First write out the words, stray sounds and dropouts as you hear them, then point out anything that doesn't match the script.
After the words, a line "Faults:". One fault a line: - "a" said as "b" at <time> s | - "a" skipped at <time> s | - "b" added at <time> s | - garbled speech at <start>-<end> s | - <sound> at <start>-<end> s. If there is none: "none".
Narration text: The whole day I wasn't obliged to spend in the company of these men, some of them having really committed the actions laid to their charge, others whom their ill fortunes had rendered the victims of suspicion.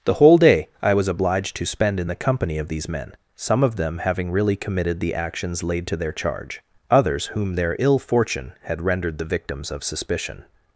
The whole day I was obliged to spend in the company of these men, some of them having really committed the actions laid to their charge, others whom their ill fortune had rendered the victims of suspicion.
Faults:
- "wasn't" said as "was" at 0.9 s
- "fortunes" said as "fortune" at 8.0 s